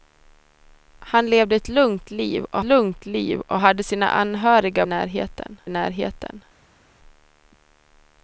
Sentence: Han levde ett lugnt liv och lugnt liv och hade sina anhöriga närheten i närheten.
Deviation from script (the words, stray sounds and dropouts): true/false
false